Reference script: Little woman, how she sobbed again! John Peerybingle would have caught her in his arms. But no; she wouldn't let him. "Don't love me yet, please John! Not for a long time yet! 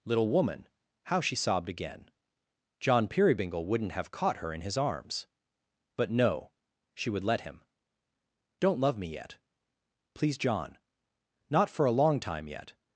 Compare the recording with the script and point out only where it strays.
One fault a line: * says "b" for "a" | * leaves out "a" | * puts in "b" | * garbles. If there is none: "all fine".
* says "wouldn't" for "would"
* says "would" for "wouldn't"